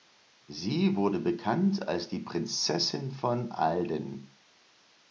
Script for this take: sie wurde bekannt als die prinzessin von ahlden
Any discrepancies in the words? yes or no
no